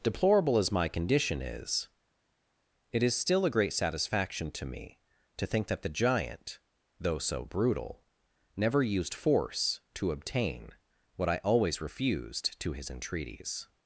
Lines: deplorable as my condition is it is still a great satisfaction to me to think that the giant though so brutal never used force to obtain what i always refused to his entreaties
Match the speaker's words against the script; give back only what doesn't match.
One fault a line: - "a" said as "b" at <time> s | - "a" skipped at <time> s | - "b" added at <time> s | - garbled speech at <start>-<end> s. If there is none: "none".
none